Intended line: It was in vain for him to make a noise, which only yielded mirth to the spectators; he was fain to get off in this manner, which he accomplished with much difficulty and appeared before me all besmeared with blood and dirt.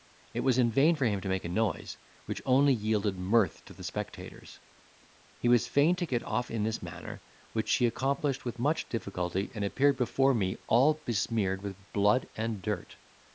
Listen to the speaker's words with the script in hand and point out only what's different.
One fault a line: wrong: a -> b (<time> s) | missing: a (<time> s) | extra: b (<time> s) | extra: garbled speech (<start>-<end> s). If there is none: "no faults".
no faults